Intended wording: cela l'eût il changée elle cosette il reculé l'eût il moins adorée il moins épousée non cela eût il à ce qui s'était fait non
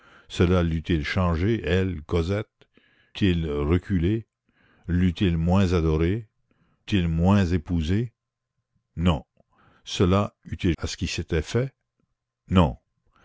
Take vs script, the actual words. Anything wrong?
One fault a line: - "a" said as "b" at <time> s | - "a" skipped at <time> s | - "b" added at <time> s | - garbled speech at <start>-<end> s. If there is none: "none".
none